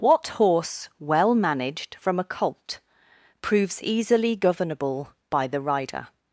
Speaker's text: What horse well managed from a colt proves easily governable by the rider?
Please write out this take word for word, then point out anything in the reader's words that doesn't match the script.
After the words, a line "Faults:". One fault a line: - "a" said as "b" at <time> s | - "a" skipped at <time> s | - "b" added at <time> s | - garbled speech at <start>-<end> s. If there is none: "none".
What horse well managed from a colt proves easily governable by the rider?
Faults:
none